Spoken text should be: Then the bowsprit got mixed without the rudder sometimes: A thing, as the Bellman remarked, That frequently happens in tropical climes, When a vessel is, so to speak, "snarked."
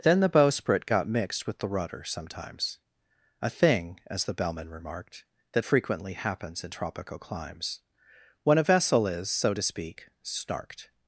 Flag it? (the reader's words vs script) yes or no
yes